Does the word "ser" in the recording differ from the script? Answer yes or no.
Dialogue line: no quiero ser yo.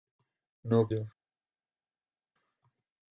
yes